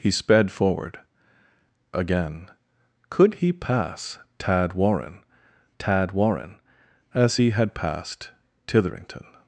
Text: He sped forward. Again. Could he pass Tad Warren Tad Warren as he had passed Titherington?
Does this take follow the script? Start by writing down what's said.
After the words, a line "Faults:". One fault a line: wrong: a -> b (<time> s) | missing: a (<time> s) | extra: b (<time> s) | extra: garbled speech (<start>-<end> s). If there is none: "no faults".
He sped forward. Again. Could he pass Tad Warren Tad Warren as he had passed Titherington?
Faults:
no faults